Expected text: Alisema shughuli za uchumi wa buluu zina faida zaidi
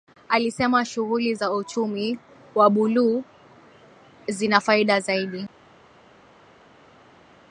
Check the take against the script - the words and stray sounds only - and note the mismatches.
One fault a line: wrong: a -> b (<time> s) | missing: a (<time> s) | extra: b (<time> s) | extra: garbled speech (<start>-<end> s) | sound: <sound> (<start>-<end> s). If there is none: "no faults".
no faults